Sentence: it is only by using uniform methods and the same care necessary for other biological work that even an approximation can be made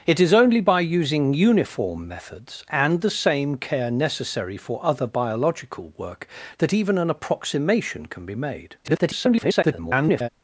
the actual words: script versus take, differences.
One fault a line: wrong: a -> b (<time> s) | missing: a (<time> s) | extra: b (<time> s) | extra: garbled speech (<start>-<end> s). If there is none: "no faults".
extra: garbled speech (8.8-10.3 s)